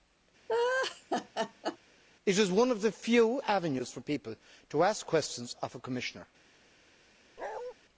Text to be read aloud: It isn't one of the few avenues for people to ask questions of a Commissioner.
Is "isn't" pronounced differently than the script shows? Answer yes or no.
yes